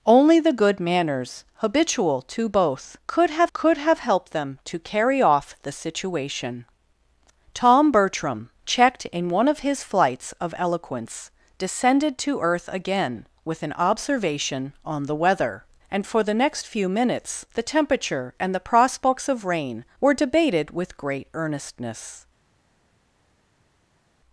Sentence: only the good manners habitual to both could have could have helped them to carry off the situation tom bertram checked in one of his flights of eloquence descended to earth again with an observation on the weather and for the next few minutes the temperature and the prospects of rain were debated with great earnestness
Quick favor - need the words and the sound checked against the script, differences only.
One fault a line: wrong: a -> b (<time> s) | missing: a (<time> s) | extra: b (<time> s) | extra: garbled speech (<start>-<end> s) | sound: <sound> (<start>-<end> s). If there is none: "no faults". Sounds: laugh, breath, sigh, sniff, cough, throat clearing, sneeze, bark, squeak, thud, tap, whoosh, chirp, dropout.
no faults